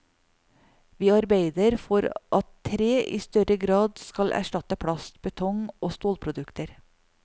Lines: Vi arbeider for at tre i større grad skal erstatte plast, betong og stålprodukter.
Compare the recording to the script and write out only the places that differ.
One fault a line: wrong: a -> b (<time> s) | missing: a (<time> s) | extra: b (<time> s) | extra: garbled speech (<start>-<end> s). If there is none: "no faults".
no faults